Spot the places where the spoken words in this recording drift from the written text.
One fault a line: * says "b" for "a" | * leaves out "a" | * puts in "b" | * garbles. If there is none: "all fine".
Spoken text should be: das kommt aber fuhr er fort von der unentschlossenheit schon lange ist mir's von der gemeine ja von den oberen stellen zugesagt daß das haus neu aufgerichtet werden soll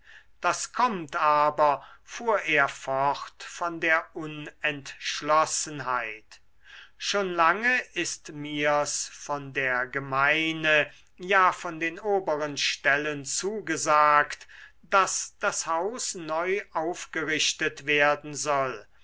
all fine